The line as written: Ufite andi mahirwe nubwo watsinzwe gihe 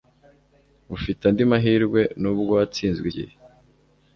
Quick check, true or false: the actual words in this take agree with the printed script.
true